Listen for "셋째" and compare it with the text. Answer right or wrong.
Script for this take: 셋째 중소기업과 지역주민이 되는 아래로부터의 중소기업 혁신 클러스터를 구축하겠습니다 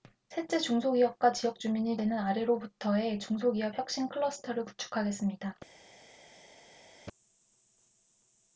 right